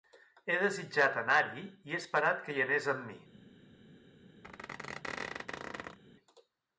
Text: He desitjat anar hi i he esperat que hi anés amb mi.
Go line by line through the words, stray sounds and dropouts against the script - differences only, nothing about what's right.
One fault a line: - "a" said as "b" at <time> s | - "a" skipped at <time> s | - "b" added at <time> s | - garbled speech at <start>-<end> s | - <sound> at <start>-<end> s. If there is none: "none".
- squeak at 4.4-6.0 s